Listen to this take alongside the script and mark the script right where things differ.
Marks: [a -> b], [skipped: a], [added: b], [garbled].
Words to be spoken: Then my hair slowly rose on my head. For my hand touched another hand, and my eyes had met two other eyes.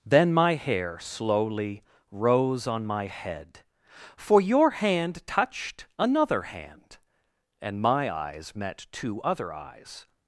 Then my hair slowly rose on my head. For [my -> your] hand touched another hand, and my eyes [skipped: had] met two other eyes.